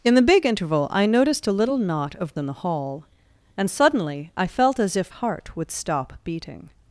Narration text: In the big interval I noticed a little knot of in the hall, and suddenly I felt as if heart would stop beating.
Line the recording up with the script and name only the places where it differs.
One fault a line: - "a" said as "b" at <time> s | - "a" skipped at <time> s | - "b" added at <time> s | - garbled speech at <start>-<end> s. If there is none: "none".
none